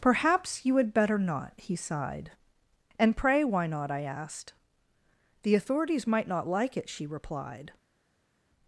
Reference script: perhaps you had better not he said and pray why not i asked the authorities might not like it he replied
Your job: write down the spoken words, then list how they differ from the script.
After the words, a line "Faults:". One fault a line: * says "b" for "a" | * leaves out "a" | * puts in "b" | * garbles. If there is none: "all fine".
perhaps you had better not he sighed and pray why not i asked the authorities might not like it she replied
Faults:
* says "sighed" for "said"
* says "she" for "he"